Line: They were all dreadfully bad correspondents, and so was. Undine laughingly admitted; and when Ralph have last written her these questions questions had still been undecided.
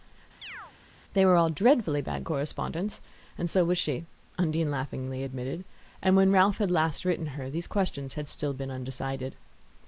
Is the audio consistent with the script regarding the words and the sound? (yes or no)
no